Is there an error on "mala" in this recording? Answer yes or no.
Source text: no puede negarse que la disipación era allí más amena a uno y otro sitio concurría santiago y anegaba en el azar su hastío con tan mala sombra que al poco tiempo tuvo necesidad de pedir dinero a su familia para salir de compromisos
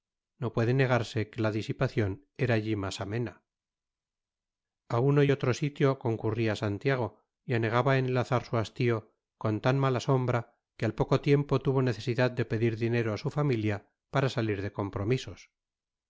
no